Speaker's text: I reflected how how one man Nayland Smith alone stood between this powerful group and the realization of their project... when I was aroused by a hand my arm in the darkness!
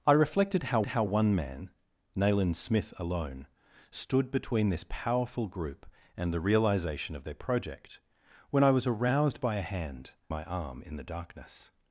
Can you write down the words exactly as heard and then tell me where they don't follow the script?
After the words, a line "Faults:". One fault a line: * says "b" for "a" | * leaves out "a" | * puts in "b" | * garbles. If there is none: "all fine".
I reflected how how one man Nayland Smith alone stood between this powerful group and the realization of their project... when I was aroused by a hand my arm in the darkness!
Faults:
all fine